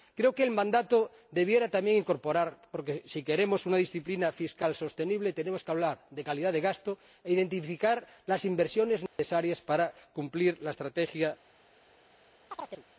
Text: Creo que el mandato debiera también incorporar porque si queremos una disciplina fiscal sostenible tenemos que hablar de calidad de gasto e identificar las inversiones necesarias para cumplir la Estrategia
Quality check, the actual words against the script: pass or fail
pass